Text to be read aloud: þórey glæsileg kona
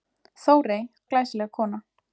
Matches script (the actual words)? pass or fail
pass